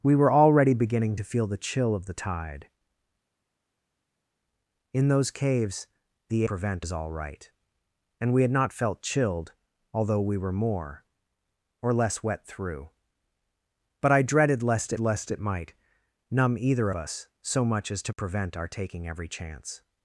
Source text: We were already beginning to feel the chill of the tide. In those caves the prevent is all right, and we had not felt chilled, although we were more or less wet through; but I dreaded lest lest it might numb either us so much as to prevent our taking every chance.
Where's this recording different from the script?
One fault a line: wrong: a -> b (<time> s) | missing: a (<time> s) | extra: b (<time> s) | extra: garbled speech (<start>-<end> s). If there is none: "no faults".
no faults